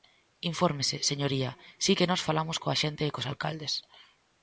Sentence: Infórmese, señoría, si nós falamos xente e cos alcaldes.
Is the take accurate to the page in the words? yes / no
no